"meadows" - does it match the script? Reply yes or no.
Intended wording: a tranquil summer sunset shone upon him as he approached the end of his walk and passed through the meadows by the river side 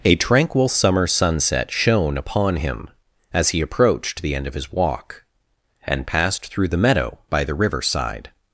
no